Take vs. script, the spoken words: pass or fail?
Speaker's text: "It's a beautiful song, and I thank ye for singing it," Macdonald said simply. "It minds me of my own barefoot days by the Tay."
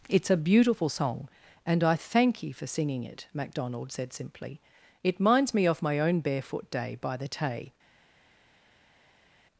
fail